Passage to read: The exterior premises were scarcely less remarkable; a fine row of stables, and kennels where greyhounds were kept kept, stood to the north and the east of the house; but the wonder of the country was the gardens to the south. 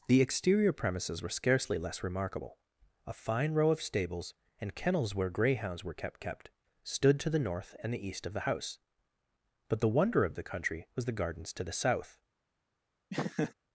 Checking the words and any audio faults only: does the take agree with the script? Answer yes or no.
no